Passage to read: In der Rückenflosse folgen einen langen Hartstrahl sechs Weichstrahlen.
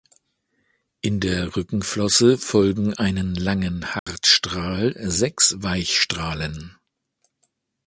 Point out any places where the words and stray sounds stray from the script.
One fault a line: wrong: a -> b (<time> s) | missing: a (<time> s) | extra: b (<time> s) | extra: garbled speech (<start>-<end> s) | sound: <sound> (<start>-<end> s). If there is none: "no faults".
sound: dropout (4.0-4.1 s)